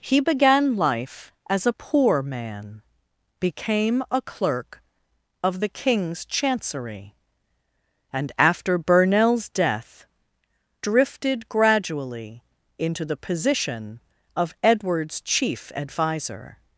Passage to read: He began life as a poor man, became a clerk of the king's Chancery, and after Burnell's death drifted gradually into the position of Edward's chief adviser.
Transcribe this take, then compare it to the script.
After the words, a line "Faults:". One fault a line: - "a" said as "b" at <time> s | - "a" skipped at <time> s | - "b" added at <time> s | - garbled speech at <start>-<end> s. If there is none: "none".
He began life as a poor man, became a clerk of the king's Chancery, and after Burnell's death drifted gradually into the position of Edward's chief adviser.
Faults:
none